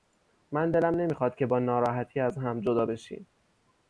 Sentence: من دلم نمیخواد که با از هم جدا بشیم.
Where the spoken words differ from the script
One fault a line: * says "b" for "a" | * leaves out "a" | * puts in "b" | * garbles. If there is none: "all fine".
* puts in "ناراحتی"